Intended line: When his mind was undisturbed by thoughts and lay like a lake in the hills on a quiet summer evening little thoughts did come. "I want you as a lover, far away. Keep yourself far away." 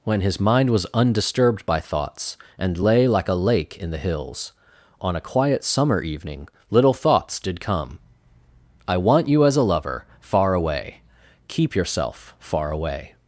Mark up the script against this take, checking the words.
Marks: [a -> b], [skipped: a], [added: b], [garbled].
When his mind was undisturbed by thoughts and lay like a lake in the hills on a quiet summer evening little thoughts did come. "I want you as a lover, far away. Keep yourself far away."